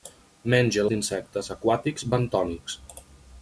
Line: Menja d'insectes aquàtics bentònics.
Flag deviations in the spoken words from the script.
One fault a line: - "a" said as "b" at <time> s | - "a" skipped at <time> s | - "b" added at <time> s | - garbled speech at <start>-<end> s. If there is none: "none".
none